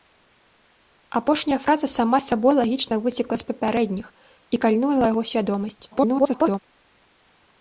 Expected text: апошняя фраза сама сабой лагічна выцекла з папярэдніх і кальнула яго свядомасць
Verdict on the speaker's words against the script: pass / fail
fail